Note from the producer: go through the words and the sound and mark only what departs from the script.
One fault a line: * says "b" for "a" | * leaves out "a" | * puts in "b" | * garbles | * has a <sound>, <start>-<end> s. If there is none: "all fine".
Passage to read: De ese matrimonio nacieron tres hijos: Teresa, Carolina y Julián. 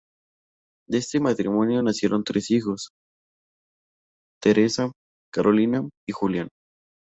* says "este" for "ese"